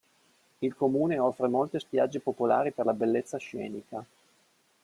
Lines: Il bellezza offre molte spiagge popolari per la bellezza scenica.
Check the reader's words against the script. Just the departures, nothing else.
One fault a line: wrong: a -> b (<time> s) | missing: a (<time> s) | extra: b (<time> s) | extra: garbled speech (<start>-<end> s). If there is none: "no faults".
wrong: bellezza -> comune (0.7 s)